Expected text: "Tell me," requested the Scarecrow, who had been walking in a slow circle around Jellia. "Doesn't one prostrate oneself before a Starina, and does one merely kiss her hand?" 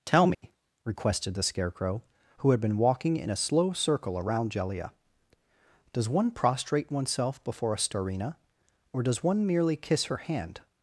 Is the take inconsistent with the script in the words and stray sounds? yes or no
yes